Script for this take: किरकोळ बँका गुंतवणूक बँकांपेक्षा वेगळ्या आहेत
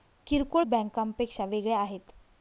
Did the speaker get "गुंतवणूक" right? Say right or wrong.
wrong